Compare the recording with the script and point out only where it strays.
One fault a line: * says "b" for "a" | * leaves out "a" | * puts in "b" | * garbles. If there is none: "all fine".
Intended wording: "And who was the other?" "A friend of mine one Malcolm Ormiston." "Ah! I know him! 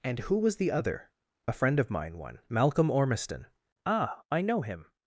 all fine